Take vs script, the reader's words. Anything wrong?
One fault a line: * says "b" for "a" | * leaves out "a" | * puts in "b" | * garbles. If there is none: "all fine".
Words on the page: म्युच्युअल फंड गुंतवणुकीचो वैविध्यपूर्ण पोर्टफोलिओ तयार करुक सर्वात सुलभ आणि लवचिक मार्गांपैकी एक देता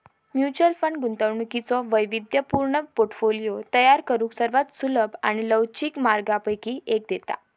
all fine